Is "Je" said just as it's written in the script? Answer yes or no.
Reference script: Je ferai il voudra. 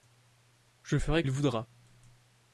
yes